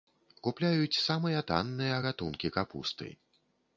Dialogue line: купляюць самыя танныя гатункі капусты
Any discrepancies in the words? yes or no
no